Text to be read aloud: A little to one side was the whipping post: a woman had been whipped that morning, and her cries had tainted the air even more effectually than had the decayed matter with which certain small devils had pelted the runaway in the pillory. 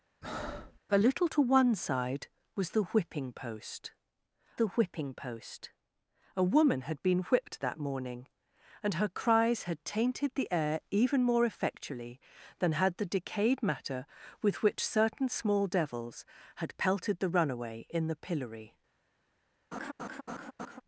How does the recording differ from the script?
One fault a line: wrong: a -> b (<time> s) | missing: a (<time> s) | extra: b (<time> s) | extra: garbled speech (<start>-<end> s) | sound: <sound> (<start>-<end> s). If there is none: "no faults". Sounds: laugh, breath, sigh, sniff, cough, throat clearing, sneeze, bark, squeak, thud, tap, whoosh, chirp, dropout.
sound: breath (0.2-0.8 s)
extra: the whipping post (4.6 s)
sound: laugh (19.7-20.8 s)